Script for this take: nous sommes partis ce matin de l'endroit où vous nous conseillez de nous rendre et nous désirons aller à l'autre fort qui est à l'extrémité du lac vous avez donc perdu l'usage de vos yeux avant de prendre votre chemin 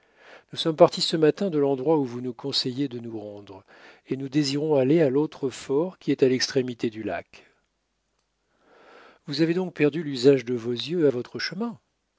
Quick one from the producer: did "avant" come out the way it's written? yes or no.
no